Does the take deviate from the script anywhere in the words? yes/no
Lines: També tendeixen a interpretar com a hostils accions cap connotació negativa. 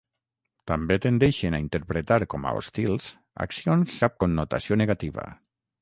no